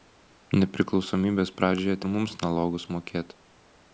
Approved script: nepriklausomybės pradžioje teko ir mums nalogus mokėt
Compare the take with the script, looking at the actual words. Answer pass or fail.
fail